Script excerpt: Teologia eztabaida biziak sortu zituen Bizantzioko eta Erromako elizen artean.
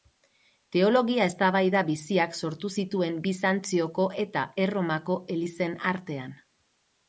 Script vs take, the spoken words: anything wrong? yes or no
no